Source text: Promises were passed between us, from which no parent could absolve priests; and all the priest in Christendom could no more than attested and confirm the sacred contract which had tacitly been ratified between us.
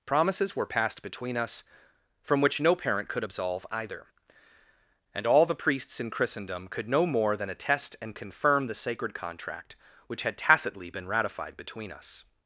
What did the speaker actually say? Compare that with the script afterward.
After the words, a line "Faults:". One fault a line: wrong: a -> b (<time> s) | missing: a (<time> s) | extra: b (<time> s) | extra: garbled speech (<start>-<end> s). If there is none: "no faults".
Promises were passed between us, from which no parent could absolve either; and all the priests in Christendom could no more than attest and confirm the sacred contract which had tacitly been ratified between us.
Faults:
wrong: priests -> either (3.7 s)
wrong: priest -> priests (5.5 s)
wrong: attested -> attest (7.5 s)